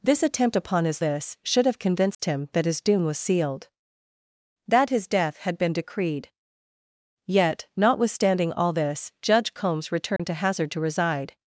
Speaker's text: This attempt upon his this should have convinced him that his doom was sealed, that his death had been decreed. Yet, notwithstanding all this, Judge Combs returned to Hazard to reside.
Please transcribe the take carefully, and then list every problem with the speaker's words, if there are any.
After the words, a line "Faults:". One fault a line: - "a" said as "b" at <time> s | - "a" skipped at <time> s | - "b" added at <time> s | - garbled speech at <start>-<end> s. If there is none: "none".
This attempt upon his this should have convinced him that his doom was sealed, that his death had been decreed. Yet, notwithstanding all this, Judge Combs returned to Hazard to reside.
Faults:
none